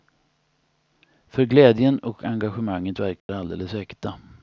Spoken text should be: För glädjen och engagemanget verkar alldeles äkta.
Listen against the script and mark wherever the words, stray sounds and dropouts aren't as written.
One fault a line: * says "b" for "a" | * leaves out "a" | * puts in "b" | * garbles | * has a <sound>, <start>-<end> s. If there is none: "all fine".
* has a dropout, 3.2-3.3 s